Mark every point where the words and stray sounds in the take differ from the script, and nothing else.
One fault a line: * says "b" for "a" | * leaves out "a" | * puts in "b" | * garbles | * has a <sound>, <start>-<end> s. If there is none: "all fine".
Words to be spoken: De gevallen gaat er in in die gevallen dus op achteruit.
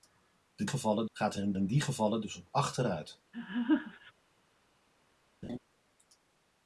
* has a laugh, 3.3-4.1 s
* has a laugh, 5.4-5.6 s